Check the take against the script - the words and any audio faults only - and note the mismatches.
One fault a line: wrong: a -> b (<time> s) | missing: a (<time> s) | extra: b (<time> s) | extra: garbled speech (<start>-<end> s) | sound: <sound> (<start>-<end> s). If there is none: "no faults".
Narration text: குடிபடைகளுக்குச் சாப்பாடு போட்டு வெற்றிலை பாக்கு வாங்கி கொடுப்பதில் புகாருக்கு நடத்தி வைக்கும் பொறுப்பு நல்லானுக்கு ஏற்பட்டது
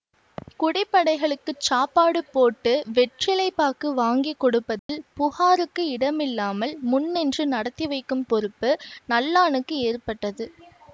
sound: dropout (4.8-4.9 s)
extra: இடமில்லாமல் முன்னின்று (5.9 s)